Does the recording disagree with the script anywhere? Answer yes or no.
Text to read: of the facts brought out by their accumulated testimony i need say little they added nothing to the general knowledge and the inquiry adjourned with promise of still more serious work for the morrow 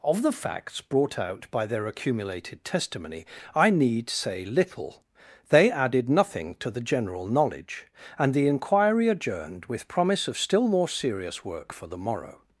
no